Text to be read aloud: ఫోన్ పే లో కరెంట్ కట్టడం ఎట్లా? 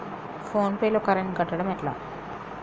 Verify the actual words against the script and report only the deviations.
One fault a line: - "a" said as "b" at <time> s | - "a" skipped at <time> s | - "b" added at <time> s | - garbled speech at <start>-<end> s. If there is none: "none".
none